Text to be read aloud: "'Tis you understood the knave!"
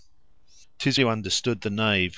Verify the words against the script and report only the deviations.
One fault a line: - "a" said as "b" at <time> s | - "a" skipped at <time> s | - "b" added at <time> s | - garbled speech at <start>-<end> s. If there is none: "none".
none